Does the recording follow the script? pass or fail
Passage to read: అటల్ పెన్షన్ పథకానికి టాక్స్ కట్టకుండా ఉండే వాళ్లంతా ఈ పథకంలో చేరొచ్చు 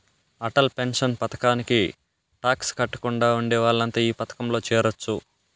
pass